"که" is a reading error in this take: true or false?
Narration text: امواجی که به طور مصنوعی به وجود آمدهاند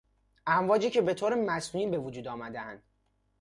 false